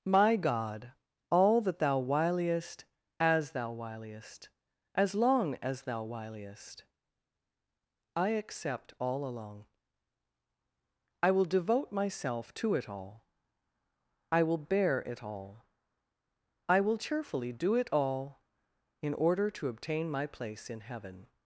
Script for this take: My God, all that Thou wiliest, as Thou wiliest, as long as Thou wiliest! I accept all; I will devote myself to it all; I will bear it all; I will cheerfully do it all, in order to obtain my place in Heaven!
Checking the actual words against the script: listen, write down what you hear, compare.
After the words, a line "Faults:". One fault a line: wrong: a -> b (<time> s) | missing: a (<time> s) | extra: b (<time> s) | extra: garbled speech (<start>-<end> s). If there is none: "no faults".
My God, all that Thou wiliest, as Thou wiliest, as long as Thou wiliest! I accept all; along I will devote myself to it all; I will bear it all; I will cheerfully do it all, in order to obtain my place in Heaven!
Faults:
extra: along (9.2 s)